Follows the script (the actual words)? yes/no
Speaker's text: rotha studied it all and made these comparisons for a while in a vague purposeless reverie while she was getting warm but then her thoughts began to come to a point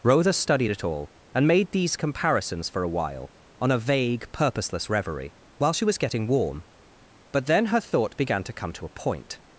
no